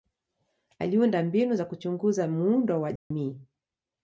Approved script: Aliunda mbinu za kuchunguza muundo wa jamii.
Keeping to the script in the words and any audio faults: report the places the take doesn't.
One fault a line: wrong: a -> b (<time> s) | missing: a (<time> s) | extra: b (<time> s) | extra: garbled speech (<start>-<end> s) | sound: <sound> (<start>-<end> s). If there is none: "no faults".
sound: dropout (3.0-3.1 s)